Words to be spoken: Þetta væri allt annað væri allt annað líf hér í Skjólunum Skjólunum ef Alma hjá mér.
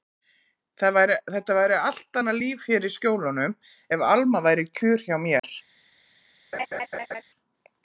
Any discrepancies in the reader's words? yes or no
yes